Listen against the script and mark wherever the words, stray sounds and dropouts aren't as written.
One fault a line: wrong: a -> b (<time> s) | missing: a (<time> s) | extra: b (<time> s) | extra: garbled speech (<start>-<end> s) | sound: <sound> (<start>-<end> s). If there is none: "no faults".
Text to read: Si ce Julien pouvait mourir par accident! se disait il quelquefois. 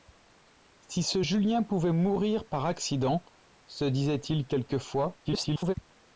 extra: garbled speech (5.2-5.7 s)